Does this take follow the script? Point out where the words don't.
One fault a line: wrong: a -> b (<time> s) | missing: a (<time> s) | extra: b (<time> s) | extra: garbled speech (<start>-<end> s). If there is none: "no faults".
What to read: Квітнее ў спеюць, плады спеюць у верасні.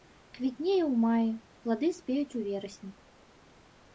wrong: спеюць -> маі (1.0 s)